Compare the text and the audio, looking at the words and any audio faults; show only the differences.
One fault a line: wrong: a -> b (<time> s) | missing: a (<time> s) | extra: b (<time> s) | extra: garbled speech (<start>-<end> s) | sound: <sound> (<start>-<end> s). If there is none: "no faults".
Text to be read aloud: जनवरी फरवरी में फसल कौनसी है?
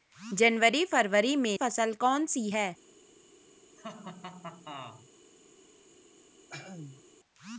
sound: laugh (3.8-5.1 s)
sound: throat clearing (6.5-7.0 s)